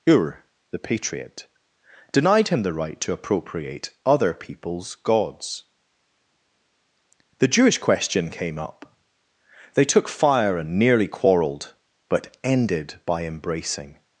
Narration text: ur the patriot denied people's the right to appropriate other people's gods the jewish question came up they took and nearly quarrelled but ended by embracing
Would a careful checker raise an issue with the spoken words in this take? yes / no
yes